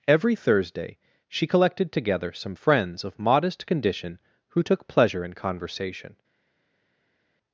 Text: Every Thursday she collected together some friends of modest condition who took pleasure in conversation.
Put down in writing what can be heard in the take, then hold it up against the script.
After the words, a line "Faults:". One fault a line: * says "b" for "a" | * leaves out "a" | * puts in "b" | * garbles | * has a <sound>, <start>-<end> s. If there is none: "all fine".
Every Thursday she collected together some friends of modest condition who took pleasure in conversation.
Faults:
all fine